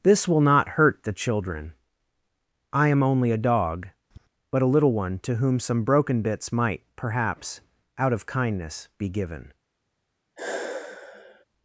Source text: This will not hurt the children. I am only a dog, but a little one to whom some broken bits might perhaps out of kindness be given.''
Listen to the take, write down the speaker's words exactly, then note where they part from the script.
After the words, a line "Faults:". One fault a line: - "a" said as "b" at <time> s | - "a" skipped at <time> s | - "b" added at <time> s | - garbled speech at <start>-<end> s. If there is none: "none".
This will not hurt the children. I am only a dog, but a little one to whom some broken bits might perhaps out of kindness be given.''
Faults:
none